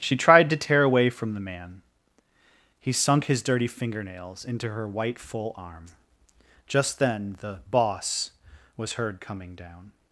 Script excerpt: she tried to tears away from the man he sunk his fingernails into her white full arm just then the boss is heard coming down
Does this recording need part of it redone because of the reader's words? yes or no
yes